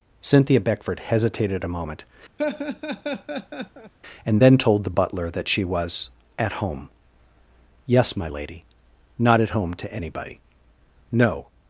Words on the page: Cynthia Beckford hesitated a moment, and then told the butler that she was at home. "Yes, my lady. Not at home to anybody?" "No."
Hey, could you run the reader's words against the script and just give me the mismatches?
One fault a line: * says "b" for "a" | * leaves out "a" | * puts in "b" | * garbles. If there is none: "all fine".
all fine